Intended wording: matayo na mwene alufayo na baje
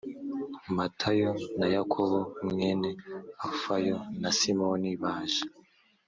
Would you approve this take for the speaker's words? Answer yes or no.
no